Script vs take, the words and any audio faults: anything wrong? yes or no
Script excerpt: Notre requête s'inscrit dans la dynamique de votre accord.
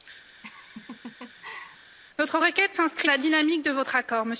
yes